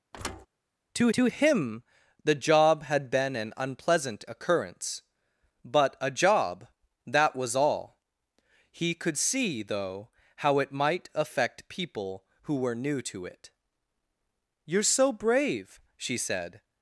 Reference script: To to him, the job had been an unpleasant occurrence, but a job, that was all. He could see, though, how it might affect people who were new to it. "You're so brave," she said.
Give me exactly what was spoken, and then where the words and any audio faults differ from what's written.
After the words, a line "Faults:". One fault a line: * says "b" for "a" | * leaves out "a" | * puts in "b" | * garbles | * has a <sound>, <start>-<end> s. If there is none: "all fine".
To to him, the job had been an unpleasant occurrence, but a job, that was all. He could see, though, how it might affect people who were new to it. "You're so brave," she said.
Faults:
* has a thud, 0.1-0.5 s